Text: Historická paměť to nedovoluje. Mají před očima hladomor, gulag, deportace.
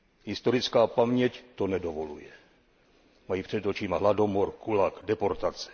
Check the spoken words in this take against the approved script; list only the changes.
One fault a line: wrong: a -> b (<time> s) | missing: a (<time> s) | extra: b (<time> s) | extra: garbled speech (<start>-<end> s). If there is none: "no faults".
no faults